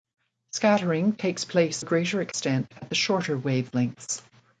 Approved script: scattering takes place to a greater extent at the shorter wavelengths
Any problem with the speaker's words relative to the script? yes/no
yes